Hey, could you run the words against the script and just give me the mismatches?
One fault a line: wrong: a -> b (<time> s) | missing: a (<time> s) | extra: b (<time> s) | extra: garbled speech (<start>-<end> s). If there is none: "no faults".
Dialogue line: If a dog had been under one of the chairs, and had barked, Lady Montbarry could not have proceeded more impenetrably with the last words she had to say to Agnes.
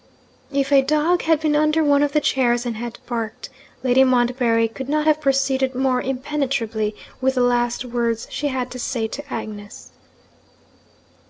no faults